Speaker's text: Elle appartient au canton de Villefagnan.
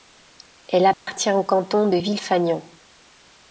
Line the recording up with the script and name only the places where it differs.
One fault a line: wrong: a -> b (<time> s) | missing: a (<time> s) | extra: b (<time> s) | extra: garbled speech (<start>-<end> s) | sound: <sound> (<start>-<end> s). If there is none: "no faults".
sound: dropout (0.9-1.1 s)